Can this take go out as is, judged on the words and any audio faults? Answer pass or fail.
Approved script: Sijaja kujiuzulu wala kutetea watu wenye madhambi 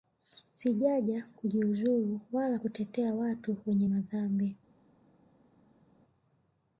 pass